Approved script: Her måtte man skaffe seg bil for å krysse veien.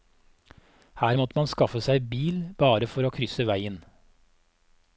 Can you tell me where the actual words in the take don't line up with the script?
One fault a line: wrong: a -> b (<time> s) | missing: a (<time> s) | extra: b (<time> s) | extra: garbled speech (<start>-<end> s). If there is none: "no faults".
extra: bare (2.6 s)